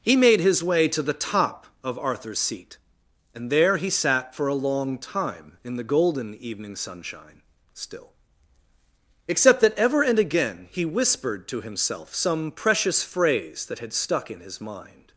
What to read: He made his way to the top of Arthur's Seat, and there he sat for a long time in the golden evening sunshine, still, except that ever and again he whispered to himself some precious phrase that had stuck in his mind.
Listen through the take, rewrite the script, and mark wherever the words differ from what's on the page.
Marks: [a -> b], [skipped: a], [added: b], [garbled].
He made his way to the top of Arthur's Seat, and there he sat for a long time in the golden evening sunshine, still, except that ever and again he whispered to himself some precious phrase that had stuck in his mind.